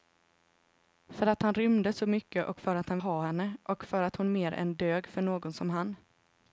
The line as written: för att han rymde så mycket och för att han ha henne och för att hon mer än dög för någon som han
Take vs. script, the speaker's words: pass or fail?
pass